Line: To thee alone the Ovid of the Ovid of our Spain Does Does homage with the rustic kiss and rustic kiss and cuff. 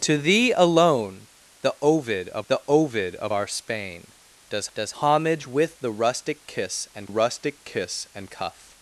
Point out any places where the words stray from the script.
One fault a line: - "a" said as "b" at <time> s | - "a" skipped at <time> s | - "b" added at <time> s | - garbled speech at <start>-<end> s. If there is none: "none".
none